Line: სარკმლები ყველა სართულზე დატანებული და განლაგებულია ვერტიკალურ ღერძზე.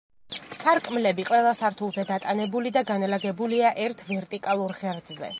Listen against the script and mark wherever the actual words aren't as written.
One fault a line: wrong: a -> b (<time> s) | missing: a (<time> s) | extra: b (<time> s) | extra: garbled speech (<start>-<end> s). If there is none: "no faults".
extra: ერთ (3.9 s)